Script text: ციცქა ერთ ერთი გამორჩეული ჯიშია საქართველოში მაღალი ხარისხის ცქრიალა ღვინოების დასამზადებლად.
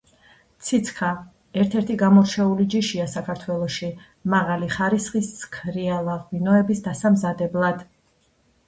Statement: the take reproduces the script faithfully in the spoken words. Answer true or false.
true